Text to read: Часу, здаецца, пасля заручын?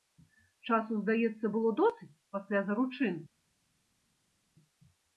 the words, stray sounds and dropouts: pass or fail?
fail